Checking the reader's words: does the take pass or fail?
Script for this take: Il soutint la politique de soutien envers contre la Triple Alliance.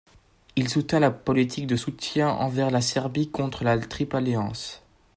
fail